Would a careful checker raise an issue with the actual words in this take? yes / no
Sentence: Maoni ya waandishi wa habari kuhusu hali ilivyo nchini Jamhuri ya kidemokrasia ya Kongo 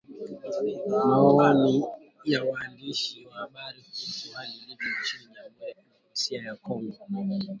no